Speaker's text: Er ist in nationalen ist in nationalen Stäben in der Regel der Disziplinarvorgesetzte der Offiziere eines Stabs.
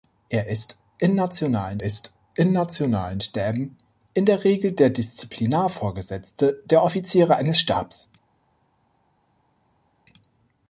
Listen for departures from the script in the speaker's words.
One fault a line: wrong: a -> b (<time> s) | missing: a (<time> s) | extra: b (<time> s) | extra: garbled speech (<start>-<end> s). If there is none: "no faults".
no faults